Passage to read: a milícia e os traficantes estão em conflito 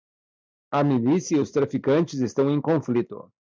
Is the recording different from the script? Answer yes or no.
no